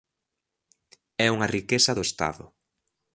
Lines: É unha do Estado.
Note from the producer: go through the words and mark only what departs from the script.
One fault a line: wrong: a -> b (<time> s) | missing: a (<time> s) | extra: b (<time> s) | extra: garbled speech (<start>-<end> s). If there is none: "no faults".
extra: riqueza (1.6 s)